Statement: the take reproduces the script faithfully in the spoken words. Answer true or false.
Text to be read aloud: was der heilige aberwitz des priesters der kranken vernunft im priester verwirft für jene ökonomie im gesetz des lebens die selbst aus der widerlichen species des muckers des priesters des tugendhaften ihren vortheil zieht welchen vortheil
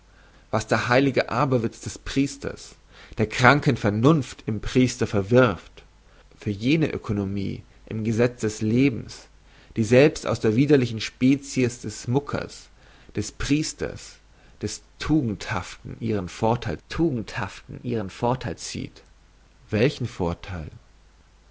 false